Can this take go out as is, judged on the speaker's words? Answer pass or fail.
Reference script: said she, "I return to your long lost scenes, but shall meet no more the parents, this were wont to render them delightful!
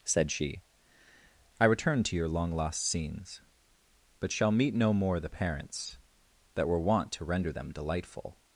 fail